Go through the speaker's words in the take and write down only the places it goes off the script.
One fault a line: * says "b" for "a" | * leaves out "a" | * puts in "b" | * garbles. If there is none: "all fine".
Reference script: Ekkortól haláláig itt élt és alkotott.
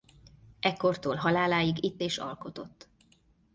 * leaves out "élt"